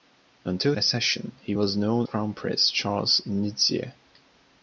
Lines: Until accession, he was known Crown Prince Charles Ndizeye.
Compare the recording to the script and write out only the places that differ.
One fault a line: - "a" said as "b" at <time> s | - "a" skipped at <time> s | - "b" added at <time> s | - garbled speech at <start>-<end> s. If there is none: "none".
none